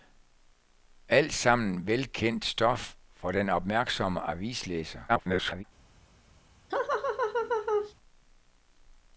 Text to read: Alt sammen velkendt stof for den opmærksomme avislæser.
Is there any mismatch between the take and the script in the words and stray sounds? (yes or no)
yes